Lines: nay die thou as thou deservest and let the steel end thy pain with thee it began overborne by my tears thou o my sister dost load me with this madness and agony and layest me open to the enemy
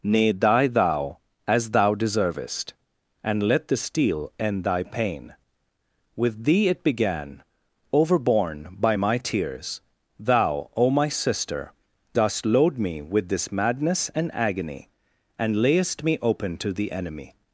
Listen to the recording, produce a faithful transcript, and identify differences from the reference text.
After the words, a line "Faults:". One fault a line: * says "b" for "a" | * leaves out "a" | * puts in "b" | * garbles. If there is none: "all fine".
nay die thou as thou deservest and let the steel end thy pain with thee it began overborne by my tears thou o my sister dost load me with this madness and agony and layest me open to the enemy
Faults:
all fine